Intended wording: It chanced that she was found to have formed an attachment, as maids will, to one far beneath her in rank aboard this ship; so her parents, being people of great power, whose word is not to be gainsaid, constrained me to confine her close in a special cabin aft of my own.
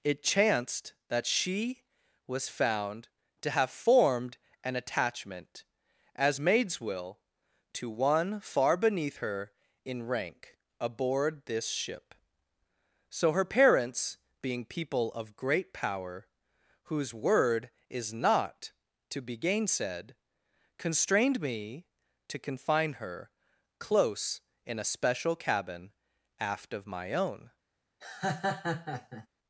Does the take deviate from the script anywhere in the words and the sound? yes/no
yes